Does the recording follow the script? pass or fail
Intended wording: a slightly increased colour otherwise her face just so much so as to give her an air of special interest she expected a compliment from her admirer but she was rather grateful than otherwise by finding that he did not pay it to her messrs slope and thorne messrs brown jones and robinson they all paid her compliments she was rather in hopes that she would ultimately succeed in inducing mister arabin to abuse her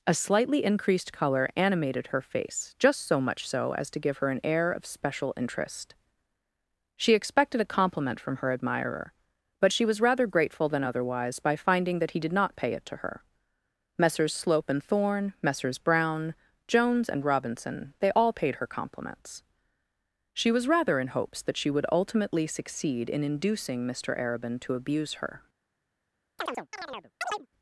fail